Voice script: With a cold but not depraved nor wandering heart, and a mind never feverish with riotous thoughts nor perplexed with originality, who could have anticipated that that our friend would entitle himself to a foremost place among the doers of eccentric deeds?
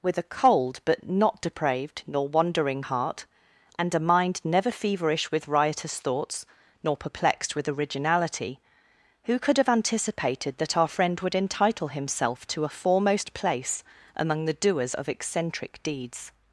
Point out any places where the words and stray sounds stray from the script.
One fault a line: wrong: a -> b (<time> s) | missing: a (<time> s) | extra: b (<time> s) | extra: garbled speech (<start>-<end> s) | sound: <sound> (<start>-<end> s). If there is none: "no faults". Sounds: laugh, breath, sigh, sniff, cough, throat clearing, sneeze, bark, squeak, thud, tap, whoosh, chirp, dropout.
missing: that (10.8 s)